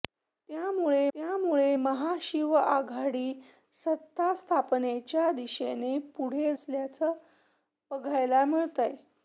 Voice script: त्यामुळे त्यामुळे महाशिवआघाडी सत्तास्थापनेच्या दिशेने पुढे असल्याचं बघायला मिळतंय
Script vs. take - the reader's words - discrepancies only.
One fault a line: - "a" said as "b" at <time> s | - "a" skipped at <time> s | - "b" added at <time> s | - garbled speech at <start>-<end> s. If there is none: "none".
none